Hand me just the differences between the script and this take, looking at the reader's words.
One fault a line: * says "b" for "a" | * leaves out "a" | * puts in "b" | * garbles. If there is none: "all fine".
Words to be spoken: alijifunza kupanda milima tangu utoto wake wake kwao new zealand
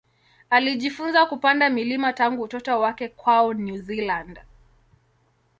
* leaves out "wake"